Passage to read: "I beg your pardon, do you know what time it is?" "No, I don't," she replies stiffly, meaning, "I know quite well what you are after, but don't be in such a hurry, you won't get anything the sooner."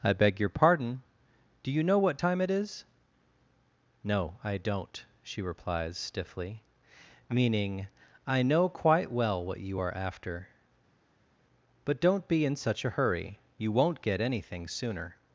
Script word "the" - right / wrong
wrong